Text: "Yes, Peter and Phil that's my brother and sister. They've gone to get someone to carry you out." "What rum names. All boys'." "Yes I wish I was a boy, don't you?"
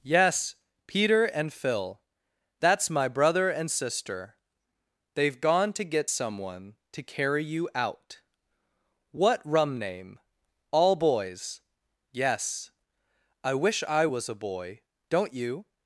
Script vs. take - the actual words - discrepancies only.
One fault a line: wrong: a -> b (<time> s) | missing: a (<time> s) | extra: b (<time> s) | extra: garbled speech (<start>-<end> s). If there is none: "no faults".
wrong: names -> name (9.8 s)